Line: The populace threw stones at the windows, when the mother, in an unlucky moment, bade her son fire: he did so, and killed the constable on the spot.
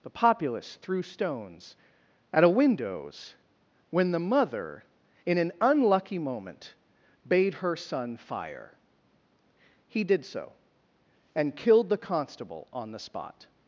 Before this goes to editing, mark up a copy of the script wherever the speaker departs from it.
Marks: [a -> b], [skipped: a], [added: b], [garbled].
The populace threw stones at [the -> a] windows, when the mother, in an unlucky moment, bade her son fire: he did so, and killed the constable on the spot.